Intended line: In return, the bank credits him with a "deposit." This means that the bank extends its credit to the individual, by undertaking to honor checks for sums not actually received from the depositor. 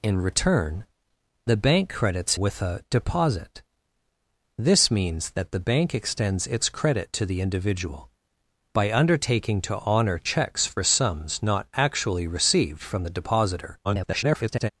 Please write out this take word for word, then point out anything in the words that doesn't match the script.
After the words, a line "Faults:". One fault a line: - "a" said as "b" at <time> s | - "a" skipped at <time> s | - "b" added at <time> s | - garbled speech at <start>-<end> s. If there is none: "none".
In return, the bank credits with a "deposit." This means that the bank extends its credit to the individual, by undertaking to honor checks for sums not actually received from the depositor. [garbled]
Faults:
- "him" skipped at 2.4 s
- garbled speech at 13.8-14.7 s